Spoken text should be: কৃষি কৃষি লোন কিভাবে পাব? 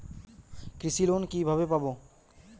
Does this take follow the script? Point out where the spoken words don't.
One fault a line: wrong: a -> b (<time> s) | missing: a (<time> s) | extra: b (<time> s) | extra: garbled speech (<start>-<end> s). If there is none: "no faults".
missing: কৃষি (1.0 s)